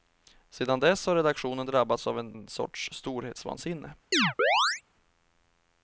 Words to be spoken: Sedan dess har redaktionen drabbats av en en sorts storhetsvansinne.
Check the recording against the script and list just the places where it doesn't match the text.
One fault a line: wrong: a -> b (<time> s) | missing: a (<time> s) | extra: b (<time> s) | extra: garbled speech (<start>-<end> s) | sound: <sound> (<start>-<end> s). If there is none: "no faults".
sound: chirp (4.1-4.8 s)